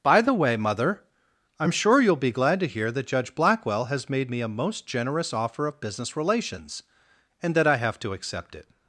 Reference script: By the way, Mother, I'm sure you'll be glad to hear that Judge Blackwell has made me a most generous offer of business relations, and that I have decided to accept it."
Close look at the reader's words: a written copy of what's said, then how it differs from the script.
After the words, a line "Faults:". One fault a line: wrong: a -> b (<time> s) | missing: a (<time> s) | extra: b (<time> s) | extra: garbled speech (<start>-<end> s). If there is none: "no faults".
By the way, Mother, I'm sure you'll be glad to hear that Judge Blackwell has made me a most generous offer of business relations, and that I have to accept it."
Faults:
missing: decided (8.0 s)